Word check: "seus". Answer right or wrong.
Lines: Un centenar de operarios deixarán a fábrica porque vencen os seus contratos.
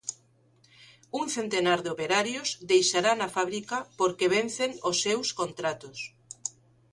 right